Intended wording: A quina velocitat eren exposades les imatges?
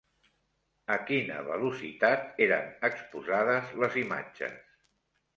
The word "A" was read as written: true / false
true